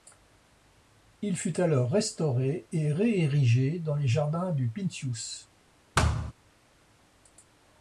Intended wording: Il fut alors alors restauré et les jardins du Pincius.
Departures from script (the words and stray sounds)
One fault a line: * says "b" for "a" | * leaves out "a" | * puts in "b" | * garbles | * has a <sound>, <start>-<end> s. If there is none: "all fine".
* leaves out "alors"
* puts in "réérigé dans"
* has a thud, 6.0-6.3 s